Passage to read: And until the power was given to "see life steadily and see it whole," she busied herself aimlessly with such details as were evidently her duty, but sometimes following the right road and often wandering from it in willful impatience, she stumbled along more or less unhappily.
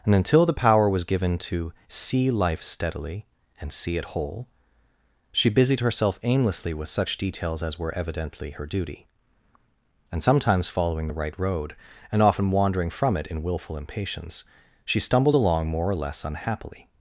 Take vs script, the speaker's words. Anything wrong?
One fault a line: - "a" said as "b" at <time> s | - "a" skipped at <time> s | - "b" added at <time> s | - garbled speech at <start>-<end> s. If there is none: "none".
- "but" said as "and" at 10.1 s